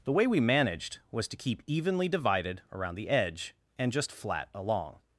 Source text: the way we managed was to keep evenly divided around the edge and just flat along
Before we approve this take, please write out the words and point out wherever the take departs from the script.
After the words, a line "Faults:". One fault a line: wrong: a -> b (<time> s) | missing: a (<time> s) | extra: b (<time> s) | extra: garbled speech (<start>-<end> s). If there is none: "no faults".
the way we managed was to keep evenly divided around the edge and just flat along
Faults:
no faults